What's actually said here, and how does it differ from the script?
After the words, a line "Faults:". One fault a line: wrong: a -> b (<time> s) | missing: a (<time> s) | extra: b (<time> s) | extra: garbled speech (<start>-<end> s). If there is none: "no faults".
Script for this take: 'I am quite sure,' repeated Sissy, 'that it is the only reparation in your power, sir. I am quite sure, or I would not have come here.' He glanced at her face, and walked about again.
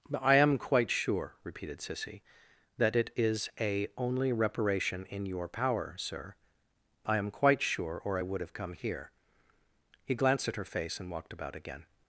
'I am quite sure,' repeated Sissy, 'that it is a only reparation in your power, sir. I am quite sure, or I would have come here.' He glanced at her face, and walked about again.
Faults:
wrong: the -> a (3.6 s)
missing: not (8.4 s)